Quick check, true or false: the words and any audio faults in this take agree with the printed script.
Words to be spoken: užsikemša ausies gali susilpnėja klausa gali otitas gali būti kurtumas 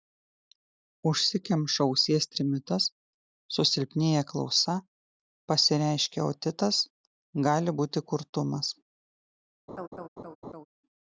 false